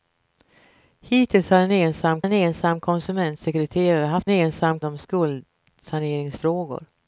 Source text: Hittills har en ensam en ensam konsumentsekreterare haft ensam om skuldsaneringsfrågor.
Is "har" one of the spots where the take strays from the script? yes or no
no